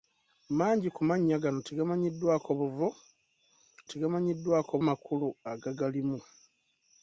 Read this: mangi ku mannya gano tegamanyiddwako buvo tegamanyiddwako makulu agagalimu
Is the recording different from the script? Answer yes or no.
no